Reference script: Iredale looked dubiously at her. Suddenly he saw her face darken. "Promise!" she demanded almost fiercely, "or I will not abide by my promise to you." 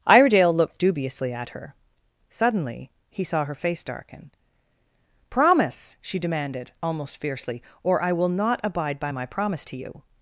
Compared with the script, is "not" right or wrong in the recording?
right